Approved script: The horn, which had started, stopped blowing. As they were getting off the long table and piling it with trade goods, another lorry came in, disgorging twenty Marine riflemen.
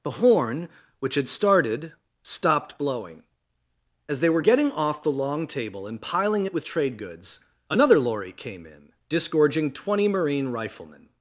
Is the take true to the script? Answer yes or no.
yes